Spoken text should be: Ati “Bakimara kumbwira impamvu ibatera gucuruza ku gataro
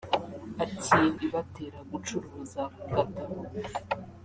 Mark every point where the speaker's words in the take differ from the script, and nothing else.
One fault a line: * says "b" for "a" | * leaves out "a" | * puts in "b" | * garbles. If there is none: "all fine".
* leaves out "Bakimara kumbwira impamvu"